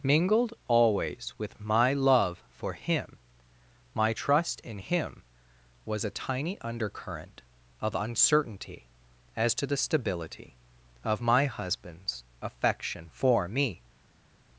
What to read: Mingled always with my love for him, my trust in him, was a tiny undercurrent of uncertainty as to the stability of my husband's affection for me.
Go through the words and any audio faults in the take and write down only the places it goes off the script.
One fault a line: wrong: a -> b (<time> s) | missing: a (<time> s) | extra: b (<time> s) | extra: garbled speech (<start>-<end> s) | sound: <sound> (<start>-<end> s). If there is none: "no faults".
no faults